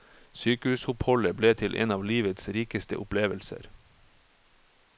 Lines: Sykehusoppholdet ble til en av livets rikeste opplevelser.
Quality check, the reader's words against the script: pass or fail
pass